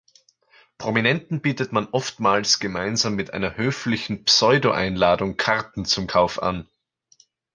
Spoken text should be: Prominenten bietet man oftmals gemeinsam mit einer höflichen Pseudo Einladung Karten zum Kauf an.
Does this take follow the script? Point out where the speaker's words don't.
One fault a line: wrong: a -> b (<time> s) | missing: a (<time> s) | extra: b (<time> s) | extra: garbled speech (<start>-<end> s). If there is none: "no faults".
no faults